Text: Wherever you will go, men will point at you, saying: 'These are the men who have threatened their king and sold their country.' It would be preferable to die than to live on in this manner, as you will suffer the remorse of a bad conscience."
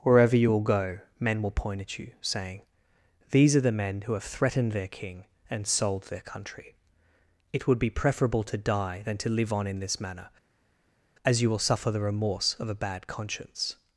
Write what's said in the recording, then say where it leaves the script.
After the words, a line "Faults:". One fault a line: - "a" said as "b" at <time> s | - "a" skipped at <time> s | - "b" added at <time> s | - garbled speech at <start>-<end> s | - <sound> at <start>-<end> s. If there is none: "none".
Wherever you will go, men will point at you, saying: 'These are the men who have threatened their king and sold their country.' It would be preferable to die than to live on in this manner, as you will suffer the remorse of a bad conscience."
Faults:
none